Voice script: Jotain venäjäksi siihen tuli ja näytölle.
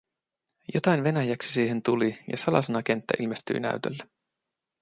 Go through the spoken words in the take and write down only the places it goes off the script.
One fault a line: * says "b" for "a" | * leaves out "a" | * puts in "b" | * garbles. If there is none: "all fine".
* puts in "salasanakenttä ilmestyi"